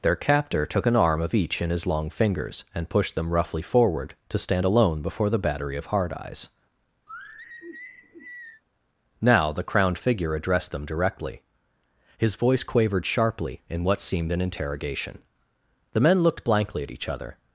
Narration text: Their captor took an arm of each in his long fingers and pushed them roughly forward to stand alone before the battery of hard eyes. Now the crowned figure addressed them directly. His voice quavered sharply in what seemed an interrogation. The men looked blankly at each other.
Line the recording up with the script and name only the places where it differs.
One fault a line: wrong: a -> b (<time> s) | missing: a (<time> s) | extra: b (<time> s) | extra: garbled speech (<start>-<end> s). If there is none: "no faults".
no faults